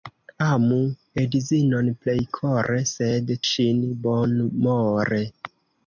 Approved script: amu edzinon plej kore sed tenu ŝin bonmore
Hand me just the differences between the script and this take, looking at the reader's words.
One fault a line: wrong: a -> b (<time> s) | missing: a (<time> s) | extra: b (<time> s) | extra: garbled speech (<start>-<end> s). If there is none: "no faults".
missing: tenu (3.3 s)